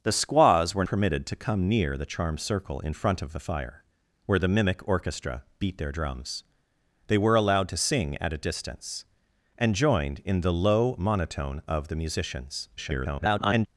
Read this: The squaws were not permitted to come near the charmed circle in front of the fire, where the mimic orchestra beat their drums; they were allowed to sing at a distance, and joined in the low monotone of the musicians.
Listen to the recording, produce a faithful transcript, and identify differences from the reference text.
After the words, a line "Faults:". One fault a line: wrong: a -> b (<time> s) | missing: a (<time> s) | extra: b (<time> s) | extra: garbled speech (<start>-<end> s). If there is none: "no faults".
The squaws were permitted to come near the charmed circle in front of the fire, where the mimic orchestra beat their drums; they were allowed to sing at a distance, and joined in the low monotone of the musicians. [garbled]
Faults:
missing: not (0.8 s)
extra: garbled speech (12.8-13.7 s)